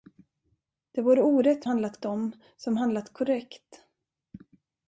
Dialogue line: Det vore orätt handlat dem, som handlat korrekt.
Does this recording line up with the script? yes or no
yes